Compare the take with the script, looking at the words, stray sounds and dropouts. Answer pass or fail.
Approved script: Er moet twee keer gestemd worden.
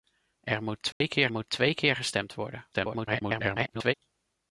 fail